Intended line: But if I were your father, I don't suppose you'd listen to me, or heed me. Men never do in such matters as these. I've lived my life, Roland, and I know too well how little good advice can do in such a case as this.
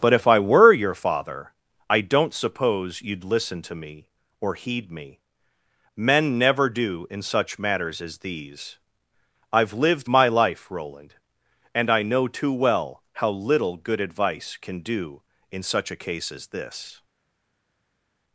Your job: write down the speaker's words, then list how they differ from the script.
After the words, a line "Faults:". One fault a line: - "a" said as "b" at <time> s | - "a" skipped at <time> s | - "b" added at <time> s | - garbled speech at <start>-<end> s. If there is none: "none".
But if I were your father, I don't suppose you'd listen to me, or heed me. Men never do in such matters as these. I've lived my life, Roland, and I know too well how little good advice can do in such a case as this.
Faults:
none